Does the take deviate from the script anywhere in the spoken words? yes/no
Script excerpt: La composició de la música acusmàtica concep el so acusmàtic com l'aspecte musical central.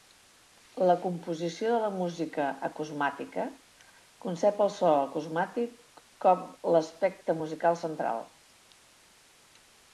no